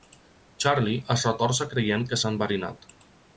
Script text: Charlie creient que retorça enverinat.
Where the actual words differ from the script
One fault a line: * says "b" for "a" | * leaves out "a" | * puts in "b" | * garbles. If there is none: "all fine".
* puts in "es retorça"
* says "s'ha" for "retorça"